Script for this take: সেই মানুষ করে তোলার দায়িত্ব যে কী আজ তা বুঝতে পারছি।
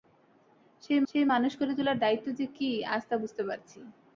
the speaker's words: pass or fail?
fail